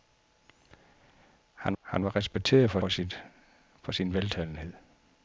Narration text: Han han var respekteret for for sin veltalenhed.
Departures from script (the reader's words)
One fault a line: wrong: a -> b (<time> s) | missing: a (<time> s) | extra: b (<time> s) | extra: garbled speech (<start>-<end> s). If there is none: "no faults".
no faults